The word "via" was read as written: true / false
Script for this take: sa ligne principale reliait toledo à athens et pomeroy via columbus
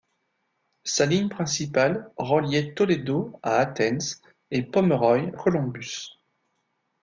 false